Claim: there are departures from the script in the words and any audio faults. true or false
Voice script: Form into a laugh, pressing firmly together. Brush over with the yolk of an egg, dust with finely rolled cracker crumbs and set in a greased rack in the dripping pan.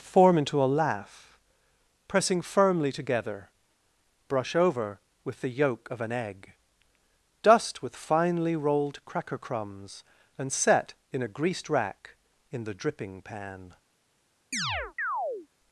true